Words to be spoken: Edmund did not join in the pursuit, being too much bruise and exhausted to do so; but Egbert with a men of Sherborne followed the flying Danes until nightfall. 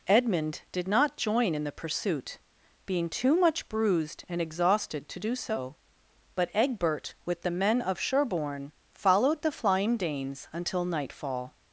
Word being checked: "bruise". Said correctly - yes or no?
no